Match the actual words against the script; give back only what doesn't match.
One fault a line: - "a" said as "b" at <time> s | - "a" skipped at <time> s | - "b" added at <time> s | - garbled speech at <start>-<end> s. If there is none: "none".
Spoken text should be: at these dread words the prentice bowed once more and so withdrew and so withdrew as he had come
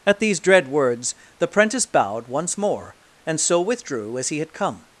- "and so withdrew" skipped at 4.2 s